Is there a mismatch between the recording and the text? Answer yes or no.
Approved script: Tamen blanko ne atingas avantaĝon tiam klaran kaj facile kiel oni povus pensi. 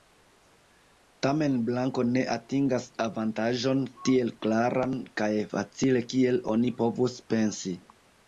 yes